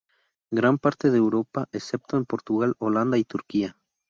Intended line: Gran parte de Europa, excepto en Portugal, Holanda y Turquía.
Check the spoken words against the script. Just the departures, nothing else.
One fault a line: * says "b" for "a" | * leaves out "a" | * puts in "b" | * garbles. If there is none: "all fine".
all fine